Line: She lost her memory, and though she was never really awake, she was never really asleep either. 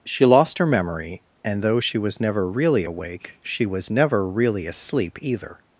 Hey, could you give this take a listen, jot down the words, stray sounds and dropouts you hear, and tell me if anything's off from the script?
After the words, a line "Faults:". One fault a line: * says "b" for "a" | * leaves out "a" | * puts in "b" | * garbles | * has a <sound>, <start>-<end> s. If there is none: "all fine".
She lost her memory, and though she was never really awake, she was never really asleep either.
Faults:
all fine